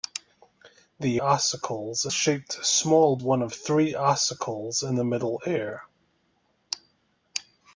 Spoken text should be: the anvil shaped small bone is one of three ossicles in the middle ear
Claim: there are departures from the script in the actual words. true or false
true